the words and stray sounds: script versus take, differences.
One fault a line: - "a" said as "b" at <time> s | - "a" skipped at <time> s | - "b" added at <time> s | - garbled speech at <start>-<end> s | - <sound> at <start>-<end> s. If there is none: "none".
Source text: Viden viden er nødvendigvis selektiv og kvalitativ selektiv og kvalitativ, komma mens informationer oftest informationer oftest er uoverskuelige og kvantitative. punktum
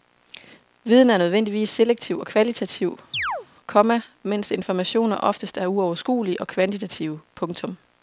- "viden" skipped at 1.1 s
- "selektiv og kvalitativ" skipped at 3.0 s
- chirp at 3.1-3.5 s
- "informationer oftest" skipped at 5.6 s